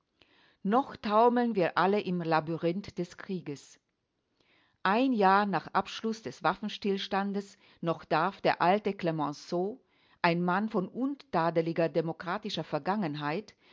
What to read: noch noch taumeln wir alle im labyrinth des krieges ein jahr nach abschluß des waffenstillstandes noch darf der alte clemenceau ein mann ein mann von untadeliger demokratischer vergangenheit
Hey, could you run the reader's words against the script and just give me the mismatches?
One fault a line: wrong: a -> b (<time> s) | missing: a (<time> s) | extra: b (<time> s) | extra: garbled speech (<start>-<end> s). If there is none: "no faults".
missing: noch (0.9 s)
missing: ein mann (10.7 s)